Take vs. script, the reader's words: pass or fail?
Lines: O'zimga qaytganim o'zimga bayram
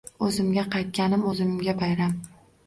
pass